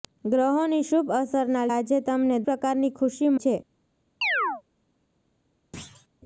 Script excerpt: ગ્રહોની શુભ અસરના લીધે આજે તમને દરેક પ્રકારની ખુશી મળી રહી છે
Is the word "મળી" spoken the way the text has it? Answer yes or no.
no